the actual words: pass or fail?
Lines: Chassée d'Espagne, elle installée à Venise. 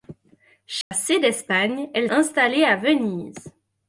pass